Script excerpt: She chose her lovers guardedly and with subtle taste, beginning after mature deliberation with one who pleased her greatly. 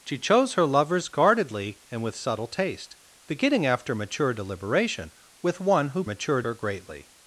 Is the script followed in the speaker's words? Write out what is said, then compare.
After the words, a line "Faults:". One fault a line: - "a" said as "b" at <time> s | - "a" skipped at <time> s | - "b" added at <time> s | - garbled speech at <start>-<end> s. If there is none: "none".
She chose her lovers guardedly and with subtle taste, beginning after mature deliberation with one who mature her greatly.
Faults:
- "pleased" said as "mature" at 6.0 s